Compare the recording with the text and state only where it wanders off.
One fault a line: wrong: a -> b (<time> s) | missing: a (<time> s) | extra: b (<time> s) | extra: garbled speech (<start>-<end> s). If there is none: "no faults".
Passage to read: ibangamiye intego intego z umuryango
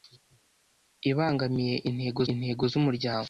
no faults